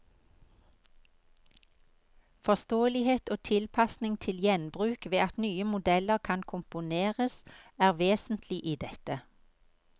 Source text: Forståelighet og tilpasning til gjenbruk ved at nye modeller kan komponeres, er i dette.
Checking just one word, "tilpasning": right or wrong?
right